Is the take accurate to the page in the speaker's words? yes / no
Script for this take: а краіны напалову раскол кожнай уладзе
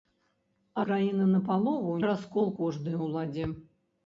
yes